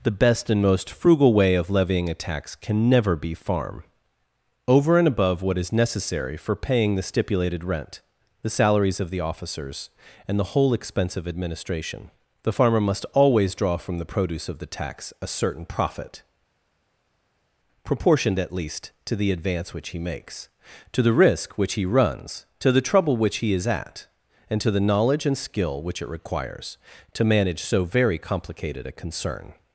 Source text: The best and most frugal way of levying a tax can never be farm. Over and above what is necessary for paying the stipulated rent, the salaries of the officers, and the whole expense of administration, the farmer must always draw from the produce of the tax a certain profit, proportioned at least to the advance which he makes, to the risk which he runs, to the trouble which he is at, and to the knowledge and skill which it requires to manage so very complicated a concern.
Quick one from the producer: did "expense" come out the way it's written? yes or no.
yes